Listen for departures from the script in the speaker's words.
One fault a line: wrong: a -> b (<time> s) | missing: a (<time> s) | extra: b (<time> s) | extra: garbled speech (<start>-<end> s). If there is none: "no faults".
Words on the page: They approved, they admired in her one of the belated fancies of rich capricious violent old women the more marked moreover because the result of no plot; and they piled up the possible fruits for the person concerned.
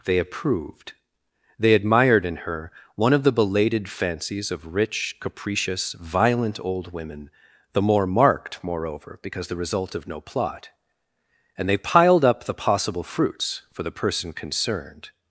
no faults